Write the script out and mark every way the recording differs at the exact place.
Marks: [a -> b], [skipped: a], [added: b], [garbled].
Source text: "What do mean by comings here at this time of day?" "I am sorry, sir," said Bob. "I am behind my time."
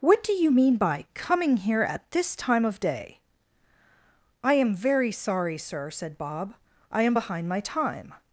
"What do [added: you] mean by [comings -> coming] here at this time of day?" "I am [added: very] sorry, sir," said Bob. "I am behind my time."